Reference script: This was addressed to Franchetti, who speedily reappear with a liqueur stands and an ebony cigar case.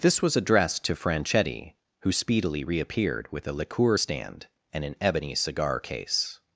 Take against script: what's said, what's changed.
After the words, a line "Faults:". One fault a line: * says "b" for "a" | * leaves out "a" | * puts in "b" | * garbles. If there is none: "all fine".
This was addressed to Franchetti, who speedily reappeared with a liqueur stand and an ebony cigar case.
Faults:
* says "reappeared" for "reappear"
* says "stand" for "stands"